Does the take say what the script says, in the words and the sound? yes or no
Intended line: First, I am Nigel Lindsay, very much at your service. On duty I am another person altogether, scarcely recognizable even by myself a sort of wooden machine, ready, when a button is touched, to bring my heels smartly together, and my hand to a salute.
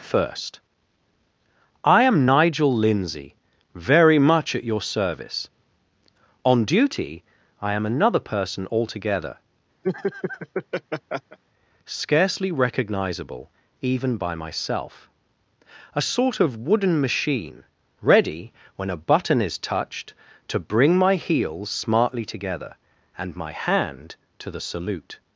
no